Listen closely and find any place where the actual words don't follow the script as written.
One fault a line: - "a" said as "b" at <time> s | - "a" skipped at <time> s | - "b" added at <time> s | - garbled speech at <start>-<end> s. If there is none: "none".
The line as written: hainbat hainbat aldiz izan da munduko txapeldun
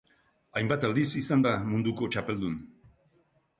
- "hainbat" skipped at 0.9 s